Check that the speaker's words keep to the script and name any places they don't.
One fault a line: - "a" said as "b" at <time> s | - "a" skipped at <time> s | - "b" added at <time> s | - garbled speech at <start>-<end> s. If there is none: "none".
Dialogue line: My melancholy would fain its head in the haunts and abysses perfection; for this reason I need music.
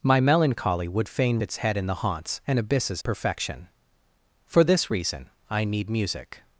none